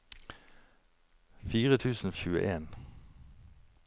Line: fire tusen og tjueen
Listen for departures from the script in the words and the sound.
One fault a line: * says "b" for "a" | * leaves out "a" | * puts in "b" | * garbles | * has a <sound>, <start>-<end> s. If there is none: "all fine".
all fine